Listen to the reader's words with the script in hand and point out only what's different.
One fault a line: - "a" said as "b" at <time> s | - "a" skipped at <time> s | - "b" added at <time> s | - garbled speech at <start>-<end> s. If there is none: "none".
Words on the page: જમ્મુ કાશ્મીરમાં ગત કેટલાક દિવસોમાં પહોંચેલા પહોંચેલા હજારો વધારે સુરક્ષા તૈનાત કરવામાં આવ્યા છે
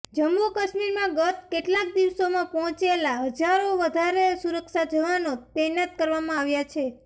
- "પહોંચેલા" skipped at 3.1 s
- "જવાનો" added at 4.9 s